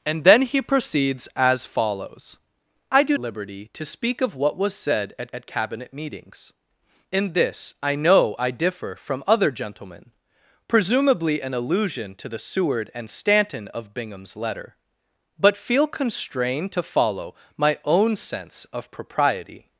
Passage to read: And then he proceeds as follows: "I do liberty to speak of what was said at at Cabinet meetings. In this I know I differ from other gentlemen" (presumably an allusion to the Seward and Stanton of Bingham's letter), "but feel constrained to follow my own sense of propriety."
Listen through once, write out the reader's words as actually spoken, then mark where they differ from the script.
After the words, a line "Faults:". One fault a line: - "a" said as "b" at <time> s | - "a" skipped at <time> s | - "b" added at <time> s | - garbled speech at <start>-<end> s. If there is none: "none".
And then he proceeds as follows: "I do liberty to speak of what was said at at Cabinet meetings. In this I know I differ from other gentlemen" (presumably an allusion to the Seward and Stanton of Bingham's letter), "but feel constrained to follow my own sense of propriety."
Faults:
none